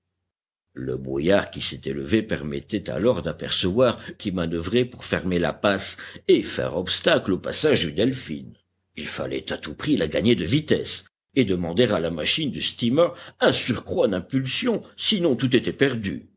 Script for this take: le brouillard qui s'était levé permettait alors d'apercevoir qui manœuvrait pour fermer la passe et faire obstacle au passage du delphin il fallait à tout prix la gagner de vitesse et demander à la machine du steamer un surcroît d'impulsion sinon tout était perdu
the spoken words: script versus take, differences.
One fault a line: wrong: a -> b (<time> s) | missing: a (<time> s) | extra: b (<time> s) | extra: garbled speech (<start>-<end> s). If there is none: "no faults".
no faults